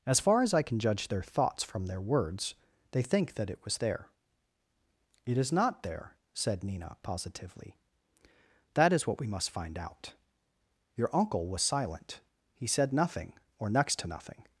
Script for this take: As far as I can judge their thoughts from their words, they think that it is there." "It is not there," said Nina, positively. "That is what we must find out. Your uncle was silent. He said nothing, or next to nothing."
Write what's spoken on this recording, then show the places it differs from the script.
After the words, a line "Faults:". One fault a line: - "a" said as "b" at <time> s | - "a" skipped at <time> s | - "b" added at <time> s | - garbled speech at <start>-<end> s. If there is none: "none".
As far as I can judge their thoughts from their words, they think that it was there." "It is not there," said Nina, positively. "That is what we must find out. Your uncle was silent. He said nothing, or next to nothing."
Faults:
- "is" said as "was" at 3.6 s